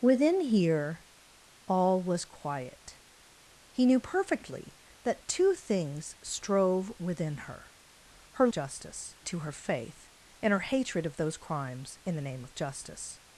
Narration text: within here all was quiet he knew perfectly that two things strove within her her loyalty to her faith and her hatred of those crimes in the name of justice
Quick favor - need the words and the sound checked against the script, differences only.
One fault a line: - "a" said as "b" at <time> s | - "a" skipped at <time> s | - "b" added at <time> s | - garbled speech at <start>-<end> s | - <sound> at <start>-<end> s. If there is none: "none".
- "loyalty" said as "justice" at 8.5 s